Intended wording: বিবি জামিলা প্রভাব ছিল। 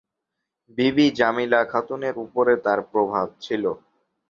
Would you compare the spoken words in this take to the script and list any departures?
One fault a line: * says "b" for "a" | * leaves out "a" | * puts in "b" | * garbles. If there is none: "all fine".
* puts in "খাতুনের উপরে তার"